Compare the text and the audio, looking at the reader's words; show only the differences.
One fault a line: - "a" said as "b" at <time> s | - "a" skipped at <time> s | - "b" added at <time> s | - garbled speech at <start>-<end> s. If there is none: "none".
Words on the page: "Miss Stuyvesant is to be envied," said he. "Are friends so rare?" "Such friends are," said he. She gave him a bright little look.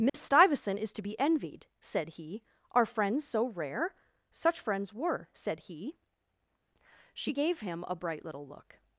- "are" said as "were" at 4.9 s